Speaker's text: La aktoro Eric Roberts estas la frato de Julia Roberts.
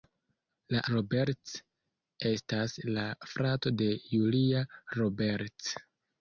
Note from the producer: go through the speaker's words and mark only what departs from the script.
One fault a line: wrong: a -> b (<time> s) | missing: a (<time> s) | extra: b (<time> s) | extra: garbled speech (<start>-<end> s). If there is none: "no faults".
missing: aktoro Eric (0.8 s)